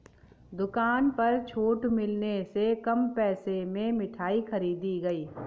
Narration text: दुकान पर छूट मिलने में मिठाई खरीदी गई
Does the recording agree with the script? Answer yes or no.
no